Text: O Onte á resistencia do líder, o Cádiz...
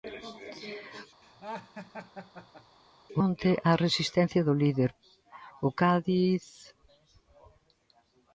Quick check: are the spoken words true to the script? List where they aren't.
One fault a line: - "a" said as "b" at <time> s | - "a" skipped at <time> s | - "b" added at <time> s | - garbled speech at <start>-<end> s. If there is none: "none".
none